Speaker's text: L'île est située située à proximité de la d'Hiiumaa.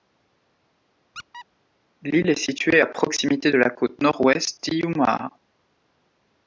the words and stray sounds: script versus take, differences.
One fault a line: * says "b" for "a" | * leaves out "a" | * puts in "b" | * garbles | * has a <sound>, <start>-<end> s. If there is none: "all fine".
* has a squeak, 1.1-1.5 s
* leaves out "située"
* puts in "côte Nord Ouest"